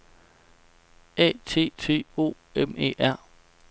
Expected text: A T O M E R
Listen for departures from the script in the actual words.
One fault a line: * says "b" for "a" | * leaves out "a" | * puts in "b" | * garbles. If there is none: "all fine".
* puts in "T"